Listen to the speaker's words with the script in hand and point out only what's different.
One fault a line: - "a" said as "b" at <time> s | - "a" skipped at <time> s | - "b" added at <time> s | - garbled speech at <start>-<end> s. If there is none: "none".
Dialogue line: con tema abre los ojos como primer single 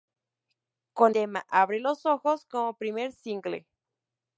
none